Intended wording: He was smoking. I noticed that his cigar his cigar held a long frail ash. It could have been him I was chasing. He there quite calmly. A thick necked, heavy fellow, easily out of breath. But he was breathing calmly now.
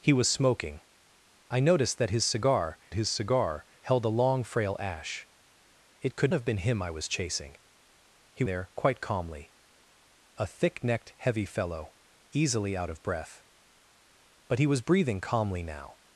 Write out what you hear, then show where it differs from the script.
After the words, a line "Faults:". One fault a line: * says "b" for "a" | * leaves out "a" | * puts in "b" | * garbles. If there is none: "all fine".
He was smoking. I noticed that his cigar his cigar held a long frail ash. It could have been him I was chasing. He there quite calmly. A thick necked, heavy fellow, easily out of breath. But he was breathing calmly now.
Faults:
all fine